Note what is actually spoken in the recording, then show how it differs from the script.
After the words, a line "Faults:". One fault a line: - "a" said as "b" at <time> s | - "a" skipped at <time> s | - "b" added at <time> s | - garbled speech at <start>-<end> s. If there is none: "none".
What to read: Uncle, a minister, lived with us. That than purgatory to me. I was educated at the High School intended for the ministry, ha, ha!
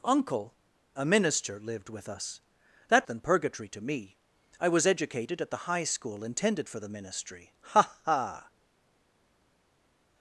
Uncle, a minister, lived with us. That than purgatory to me. I was educated at the High School intended for the ministry, ha, ha!
Faults:
none